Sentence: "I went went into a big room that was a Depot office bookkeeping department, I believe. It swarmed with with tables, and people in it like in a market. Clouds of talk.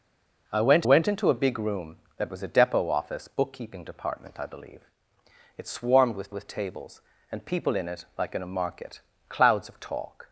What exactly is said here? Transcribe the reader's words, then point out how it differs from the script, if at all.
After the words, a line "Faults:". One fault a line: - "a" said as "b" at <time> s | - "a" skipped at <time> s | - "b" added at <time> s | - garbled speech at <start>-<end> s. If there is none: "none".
"I went went into a big room that was a Depot office bookkeeping department, I believe. It swarmed with with tables, and people in it like in a market. Clouds of talk.
Faults:
none